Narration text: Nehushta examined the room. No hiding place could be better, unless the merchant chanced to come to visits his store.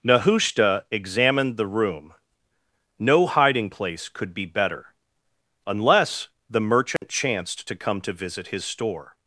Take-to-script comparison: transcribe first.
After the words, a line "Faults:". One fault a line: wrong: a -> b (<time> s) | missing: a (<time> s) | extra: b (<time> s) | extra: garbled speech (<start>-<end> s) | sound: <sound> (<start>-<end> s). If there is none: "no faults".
Nehushta examined the room. No hiding place could be better, unless the merchant chanced to come to visit his store.
Faults:
sound: dropout (7.0-7.0 s)
wrong: visits -> visit (8.1 s)